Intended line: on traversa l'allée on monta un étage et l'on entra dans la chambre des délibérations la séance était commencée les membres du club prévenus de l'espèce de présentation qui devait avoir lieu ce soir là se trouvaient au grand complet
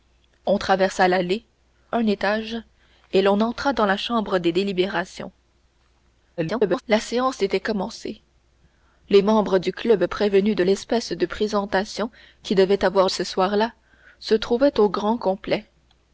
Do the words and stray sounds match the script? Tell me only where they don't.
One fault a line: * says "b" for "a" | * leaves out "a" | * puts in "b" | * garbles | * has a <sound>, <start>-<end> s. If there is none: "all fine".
* leaves out "on monta"
* garbles
* leaves out "lieu"